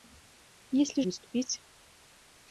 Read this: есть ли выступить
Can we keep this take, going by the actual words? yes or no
yes